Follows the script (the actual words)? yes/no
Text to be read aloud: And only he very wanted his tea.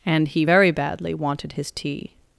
no